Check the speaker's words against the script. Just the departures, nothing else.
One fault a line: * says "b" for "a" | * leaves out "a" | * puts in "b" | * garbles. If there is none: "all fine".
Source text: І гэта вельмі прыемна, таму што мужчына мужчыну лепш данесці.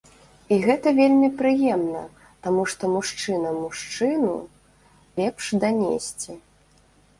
all fine